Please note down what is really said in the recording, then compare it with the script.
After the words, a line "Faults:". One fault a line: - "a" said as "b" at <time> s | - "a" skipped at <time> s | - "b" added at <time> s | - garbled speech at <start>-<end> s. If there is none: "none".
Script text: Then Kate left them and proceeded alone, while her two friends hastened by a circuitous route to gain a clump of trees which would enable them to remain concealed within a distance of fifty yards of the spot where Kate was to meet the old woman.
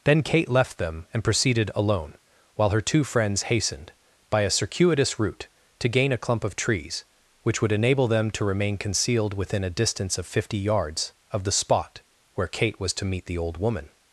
Then Kate left them and proceeded alone, while her two friends hastened by a circuitous route to gain a clump of trees which would enable them to remain concealed within a distance of fifty yards of the spot where Kate was to meet the old woman.
Faults:
none